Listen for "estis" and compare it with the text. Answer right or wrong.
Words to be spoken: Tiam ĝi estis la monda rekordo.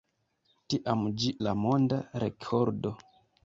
wrong